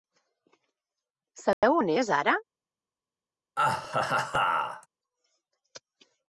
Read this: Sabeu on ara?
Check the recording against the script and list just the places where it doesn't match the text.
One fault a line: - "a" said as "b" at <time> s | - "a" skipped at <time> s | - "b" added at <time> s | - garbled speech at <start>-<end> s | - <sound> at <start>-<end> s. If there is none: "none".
- dropout at 1.5-1.6 s
- "és" added at 1.9 s
- laugh at 3.6-4.9 s